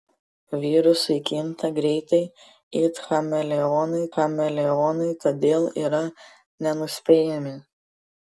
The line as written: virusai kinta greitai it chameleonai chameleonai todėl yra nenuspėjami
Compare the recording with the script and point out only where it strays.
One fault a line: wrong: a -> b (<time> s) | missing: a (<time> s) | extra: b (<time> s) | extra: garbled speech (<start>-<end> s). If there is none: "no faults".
no faults